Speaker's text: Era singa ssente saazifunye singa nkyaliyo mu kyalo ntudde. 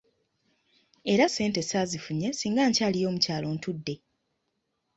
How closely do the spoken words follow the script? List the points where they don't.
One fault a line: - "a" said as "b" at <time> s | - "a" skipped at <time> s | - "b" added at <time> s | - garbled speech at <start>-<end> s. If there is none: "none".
- "singa" skipped at 1.2 s